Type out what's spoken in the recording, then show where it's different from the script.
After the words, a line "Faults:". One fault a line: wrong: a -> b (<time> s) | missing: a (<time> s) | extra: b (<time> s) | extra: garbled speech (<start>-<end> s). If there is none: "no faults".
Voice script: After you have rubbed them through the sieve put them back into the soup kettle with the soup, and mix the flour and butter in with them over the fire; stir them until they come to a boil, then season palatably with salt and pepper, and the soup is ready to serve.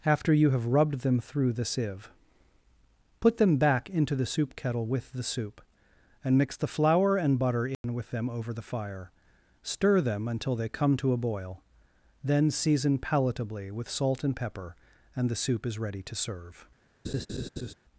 After you have rubbed them through the sieve put them back into the soup kettle with the soup, and mix the flour and butter in with them over the fire; stir them until they come to a boil, then season palatably with salt and pepper, and the soup is ready to serve.
Faults:
no faults